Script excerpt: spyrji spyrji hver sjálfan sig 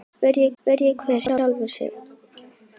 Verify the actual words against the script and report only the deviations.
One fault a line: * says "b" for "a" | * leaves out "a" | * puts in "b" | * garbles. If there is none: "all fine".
all fine